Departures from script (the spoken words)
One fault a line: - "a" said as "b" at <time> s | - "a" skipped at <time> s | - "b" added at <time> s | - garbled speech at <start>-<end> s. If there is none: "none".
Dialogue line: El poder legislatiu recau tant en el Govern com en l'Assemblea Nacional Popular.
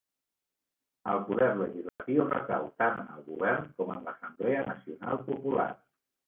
none